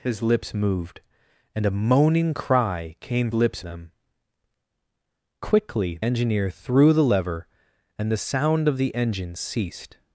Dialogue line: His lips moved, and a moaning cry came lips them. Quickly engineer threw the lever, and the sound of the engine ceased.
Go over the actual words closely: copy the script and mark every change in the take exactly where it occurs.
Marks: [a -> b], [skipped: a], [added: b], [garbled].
His lips moved, and a moaning cry came lips them. Quickly engineer threw the lever, and the sound of the engine ceased.